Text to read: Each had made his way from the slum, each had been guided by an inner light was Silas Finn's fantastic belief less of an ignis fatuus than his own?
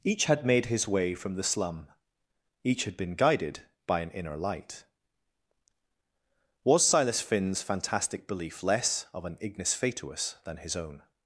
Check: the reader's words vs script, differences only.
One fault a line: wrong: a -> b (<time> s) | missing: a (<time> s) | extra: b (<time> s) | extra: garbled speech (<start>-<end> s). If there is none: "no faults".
no faults